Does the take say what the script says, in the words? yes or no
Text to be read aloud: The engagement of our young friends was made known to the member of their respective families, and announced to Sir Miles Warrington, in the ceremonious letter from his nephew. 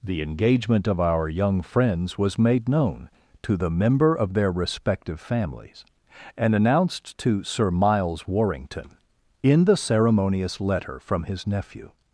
yes